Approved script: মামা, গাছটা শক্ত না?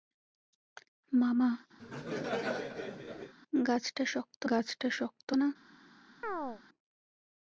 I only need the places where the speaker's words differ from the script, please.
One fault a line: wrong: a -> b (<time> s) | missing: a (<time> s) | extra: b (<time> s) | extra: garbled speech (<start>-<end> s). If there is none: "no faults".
extra: গাছটা শক্ত (4.5 s)